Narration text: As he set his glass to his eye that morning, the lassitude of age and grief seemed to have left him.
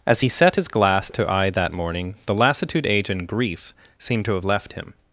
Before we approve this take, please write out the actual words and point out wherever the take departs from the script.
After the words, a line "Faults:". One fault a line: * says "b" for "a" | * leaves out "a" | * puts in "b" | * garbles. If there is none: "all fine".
As he set his glass to eye that morning, the lassitude age and grief seemed to have left him.
Faults:
* leaves out "his"
* leaves out "of"